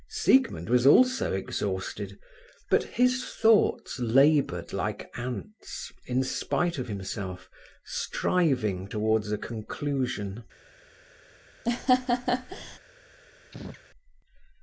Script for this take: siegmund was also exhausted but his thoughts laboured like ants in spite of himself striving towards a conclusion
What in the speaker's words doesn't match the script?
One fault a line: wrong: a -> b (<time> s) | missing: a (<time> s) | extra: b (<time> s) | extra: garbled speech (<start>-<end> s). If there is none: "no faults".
no faults